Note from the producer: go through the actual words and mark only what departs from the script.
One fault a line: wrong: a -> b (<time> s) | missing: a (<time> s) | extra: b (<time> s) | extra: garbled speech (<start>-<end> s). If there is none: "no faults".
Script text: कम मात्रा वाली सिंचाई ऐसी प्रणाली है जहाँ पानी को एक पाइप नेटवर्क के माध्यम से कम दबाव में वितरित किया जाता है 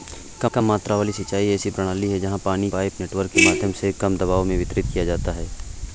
extra: कम (0.5 s)
missing: को एक (2.7 s)